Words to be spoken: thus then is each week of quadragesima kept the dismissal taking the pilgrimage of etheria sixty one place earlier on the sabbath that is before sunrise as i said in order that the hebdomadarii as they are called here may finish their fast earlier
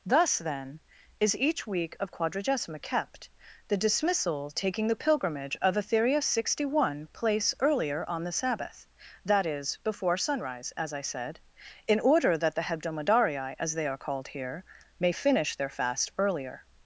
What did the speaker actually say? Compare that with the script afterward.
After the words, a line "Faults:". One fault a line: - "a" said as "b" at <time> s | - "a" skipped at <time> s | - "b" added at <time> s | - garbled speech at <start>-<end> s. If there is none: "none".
thus then is each week of quadragesima kept the dismissal taking the pilgrimage of etheria sixty one place earlier on the sabbath that is before sunrise as i said in order that the hebdomadarii as they are called here may finish their fast earlier
Faults:
none